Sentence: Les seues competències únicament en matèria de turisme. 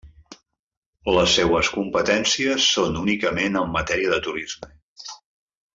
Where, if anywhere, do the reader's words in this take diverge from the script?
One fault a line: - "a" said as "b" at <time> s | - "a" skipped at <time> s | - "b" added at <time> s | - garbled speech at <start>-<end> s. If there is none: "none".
- "són" added at 2.8 s